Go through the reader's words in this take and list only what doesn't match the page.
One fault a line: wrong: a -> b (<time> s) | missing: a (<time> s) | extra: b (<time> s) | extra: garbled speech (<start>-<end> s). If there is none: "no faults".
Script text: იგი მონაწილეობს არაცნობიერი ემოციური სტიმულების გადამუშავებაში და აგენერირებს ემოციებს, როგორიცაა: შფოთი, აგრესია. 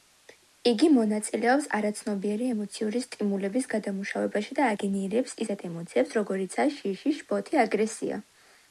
extra: ისეთ (5.5 s)
extra: შიში (6.8 s)